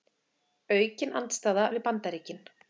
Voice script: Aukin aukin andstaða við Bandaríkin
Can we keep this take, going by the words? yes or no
no